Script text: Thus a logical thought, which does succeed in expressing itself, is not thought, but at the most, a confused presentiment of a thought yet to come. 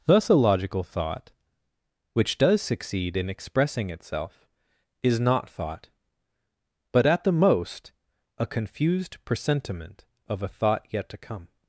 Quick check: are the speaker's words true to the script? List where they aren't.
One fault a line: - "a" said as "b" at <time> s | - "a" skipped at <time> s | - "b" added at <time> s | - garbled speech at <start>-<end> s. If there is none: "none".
none